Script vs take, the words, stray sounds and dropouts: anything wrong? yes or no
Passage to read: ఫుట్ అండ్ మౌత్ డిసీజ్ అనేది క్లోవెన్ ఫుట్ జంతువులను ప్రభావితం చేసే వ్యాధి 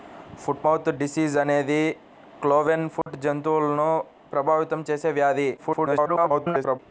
yes